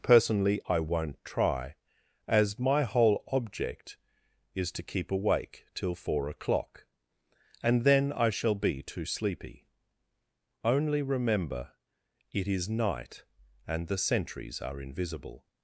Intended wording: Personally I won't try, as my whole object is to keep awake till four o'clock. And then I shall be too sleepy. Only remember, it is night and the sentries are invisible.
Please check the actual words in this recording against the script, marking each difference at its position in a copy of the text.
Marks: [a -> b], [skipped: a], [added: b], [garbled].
Personally I won't try, as my whole object is to keep awake till four o'clock. And then I shall be too sleepy. Only remember, it is night and the sentries are invisible.